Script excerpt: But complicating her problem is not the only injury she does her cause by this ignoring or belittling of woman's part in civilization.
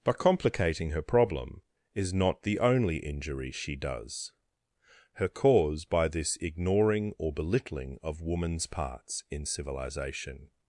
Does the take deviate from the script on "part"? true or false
true